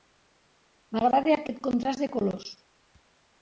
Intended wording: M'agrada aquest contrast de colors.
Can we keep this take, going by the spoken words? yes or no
yes